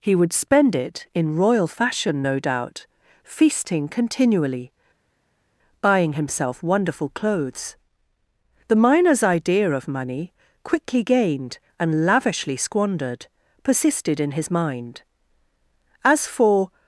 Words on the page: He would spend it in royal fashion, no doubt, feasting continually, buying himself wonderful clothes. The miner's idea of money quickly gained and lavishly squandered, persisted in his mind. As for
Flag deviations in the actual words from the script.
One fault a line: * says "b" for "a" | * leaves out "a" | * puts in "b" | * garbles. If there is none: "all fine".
all fine